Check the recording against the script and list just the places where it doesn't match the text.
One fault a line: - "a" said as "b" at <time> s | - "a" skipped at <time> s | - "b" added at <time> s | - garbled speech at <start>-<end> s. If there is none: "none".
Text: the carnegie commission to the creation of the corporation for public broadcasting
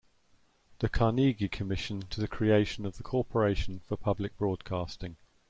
none